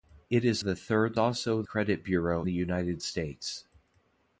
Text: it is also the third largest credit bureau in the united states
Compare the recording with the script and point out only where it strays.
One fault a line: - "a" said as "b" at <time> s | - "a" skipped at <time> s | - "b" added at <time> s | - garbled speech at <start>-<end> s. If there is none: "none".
- "also" skipped at 0.6 s
- "largest" said as "also" at 1.2 s
- "in" skipped at 2.4 s